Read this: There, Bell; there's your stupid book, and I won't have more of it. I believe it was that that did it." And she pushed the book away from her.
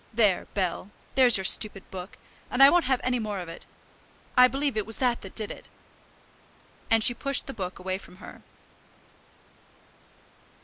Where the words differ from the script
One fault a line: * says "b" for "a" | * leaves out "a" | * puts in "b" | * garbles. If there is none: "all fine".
* puts in "any"